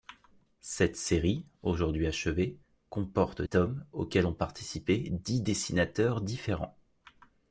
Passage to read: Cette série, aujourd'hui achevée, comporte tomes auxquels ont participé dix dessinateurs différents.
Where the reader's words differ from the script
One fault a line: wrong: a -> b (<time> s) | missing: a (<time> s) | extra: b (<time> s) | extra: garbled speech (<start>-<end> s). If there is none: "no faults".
no faults